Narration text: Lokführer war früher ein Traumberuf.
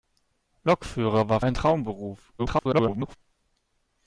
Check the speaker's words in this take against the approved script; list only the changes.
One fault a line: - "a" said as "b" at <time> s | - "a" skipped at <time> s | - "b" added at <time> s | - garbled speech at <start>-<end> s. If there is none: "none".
- "früher" skipped at 1.4 s
- garbled speech at 2.4-3.2 s